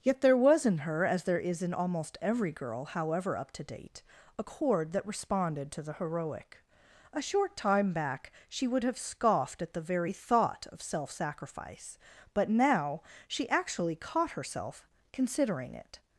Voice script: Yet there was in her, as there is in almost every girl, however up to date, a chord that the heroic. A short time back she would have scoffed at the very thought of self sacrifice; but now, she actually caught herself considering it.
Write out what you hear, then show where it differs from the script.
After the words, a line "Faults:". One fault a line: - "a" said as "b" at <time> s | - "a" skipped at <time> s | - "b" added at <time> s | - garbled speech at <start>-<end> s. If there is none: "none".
Yet there was in her, as there is in almost every girl, however up to date, a chord that responded to the heroic. A short time back she would have scoffed at the very thought of self sacrifice; but now, she actually caught herself considering it.
Faults:
- "responded to" added at 5.1 s